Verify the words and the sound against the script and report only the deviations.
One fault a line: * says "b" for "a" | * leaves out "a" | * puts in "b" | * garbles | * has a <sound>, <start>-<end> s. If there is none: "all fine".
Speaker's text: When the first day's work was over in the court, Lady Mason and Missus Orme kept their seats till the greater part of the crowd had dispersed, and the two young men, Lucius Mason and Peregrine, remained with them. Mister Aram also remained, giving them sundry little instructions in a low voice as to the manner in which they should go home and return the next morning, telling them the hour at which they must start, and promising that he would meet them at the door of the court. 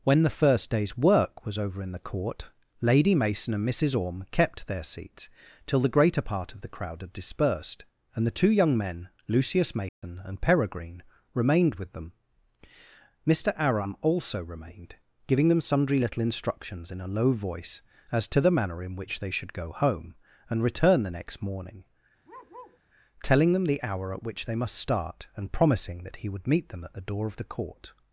* has a dropout, 9.9-10.0 s
* has a bark, 22.2-22.8 s